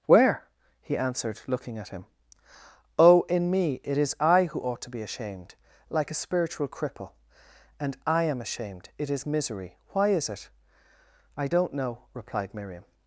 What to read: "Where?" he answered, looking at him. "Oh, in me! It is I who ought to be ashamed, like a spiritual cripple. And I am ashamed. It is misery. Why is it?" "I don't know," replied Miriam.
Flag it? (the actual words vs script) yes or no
no